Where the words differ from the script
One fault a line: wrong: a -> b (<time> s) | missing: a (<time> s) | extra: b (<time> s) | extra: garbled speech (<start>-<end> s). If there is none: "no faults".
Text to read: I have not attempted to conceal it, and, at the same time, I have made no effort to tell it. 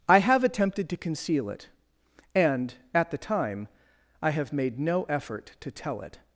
missing: not (0.4 s)
missing: same (3.2 s)